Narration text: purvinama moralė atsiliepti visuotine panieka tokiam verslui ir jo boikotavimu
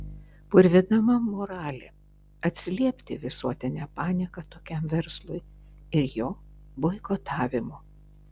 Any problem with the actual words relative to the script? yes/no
no